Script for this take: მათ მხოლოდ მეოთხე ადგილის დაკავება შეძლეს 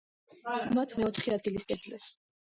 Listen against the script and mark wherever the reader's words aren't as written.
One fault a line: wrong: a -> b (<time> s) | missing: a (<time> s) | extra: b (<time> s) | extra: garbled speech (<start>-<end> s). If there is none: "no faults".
missing: მხოლოდ (0.9 s)
missing: დაკავება (1.7 s)